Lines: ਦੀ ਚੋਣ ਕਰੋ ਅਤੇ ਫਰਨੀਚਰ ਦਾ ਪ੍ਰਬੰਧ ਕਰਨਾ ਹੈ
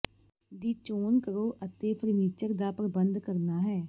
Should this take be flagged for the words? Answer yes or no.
no